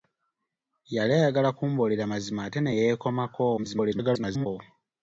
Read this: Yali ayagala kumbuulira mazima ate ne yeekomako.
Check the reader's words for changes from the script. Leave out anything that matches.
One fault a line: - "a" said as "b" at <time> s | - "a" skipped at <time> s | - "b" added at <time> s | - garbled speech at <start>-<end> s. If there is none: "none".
- garbled speech at 3.6-4.5 s